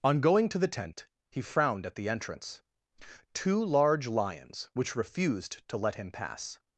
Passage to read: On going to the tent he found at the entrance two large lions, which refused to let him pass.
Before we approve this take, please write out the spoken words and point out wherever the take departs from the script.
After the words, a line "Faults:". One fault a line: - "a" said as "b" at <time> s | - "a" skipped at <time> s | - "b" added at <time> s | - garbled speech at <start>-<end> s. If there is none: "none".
On going to the tent he frowned at the entrance two large lions, which refused to let him pass.
Faults:
- "found" said as "frowned" at 1.4 s